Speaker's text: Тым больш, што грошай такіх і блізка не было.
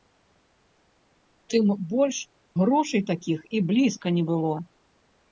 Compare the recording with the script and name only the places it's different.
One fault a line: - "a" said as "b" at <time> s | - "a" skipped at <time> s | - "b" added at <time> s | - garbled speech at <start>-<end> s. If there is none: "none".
- "што" skipped at 2.2 s